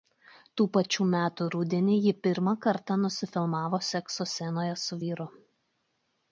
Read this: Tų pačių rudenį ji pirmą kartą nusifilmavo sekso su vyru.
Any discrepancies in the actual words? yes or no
yes